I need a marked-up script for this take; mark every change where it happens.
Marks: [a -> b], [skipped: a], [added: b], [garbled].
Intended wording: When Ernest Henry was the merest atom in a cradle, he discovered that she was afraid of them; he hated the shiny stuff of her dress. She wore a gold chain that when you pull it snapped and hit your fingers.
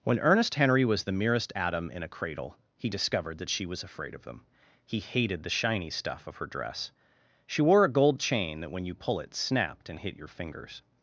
When Ernest Henry was the merest atom in a cradle, he discovered that she was afraid of them; he hated the shiny stuff of her dress. She wore a gold chain that when you pull it snapped and hit your fingers.